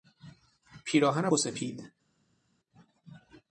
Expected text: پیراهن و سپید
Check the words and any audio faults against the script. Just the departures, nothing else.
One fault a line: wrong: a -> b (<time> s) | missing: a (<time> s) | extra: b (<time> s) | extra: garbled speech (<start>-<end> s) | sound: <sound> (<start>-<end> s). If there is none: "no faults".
no faults